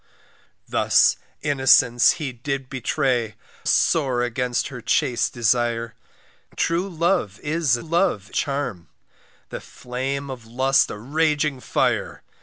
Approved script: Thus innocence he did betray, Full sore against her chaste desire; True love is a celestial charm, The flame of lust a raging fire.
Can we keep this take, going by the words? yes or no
no